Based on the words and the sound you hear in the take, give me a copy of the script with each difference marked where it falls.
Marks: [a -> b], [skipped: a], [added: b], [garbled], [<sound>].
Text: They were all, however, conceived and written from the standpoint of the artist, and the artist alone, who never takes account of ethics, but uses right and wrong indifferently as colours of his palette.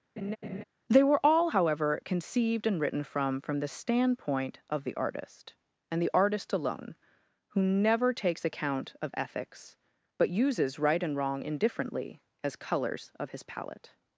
[laugh] They were all, however, conceived and written from [added: from] the standpoint of the artist, and the artist alone, who never takes account of ethics, but uses right and wrong indifferently as colours of his palette.